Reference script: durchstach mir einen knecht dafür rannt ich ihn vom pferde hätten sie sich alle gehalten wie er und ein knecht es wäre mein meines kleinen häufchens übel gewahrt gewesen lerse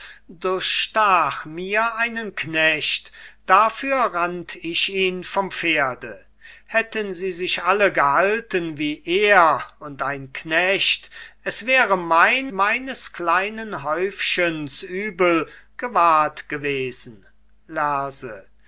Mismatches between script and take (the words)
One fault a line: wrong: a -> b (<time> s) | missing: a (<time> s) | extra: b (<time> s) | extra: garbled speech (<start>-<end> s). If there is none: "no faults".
no faults